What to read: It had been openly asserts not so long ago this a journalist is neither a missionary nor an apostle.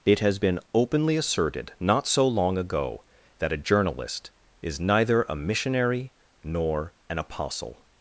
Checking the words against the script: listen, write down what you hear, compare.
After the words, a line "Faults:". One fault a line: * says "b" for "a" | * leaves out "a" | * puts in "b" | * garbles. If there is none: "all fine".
It has been openly asserted not so long ago that a journalist is neither a missionary nor an apostle.
Faults:
* says "has" for "had"
* says "asserted" for "asserts"
* says "that" for "this"